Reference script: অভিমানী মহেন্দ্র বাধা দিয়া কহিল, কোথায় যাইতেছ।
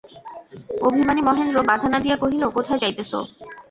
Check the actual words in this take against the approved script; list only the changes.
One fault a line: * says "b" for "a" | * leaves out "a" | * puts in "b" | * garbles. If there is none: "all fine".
* puts in "না"